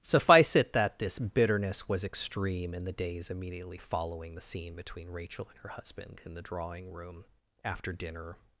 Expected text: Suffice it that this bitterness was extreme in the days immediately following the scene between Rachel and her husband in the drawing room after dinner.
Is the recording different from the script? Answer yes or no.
no